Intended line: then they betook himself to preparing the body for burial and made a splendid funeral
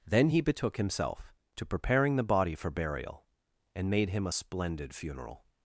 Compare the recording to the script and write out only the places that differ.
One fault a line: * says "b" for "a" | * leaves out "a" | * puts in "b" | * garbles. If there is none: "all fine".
* says "he" for "they"
* puts in "him"